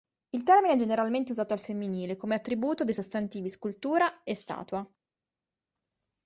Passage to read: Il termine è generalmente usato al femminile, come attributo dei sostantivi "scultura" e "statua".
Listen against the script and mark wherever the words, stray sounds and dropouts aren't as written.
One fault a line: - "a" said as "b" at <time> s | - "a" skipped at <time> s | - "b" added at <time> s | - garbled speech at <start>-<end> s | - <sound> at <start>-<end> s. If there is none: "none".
none